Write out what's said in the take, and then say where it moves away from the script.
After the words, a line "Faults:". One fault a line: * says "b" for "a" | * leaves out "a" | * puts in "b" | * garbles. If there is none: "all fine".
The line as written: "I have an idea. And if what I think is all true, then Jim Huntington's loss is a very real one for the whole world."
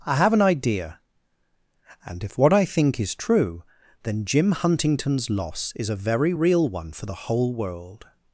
"I have an idea. And if what I think is true, then Jim Huntington's loss is a very real one for the whole world."
Faults:
* leaves out "all"